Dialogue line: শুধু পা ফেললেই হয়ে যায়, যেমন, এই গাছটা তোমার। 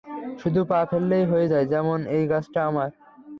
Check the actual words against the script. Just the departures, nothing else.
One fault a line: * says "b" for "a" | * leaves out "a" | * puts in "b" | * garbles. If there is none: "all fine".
* says "আমার" for "তোমার"